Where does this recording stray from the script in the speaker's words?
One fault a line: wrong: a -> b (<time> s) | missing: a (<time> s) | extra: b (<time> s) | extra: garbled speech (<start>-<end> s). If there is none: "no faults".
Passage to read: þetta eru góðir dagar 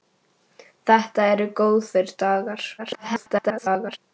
extra: garbled speech (2.8-4.0 s)